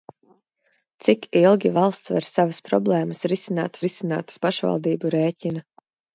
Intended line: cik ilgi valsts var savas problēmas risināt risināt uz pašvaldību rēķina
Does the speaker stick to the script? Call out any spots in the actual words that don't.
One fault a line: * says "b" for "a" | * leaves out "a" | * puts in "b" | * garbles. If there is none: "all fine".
all fine